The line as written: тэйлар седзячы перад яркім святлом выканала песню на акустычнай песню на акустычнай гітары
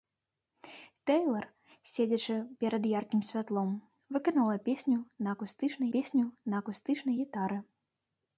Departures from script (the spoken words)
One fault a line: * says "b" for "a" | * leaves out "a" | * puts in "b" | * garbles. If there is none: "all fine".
all fine